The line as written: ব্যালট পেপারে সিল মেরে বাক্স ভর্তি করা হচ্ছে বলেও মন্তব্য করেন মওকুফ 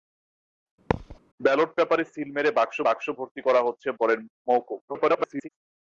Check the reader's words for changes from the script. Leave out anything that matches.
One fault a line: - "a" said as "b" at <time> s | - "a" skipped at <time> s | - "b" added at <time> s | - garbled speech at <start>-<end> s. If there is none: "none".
- "বাক্স" added at 2.9 s
- "বলেও মন্তব্য" skipped at 3.9 s
- garbled speech at 4.9-5.5 s